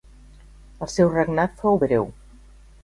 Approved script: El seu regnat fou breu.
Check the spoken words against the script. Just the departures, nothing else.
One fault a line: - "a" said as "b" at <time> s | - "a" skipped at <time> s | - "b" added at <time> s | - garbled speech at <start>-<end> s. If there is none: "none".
none